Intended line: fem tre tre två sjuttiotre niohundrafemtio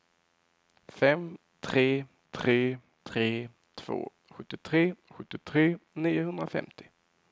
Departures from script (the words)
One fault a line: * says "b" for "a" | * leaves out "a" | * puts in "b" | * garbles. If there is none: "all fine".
* puts in "tre"
* puts in "sjuttiotre"